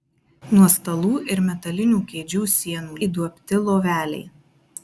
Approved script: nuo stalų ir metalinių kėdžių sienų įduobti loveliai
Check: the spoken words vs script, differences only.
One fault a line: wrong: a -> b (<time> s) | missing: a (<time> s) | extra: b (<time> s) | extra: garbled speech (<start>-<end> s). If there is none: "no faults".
no faults